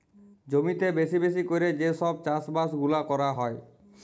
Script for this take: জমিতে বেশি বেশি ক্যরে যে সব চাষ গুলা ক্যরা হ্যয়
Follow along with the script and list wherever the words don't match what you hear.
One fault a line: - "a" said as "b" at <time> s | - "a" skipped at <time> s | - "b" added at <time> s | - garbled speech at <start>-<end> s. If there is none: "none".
- "বাস" added at 2.5 s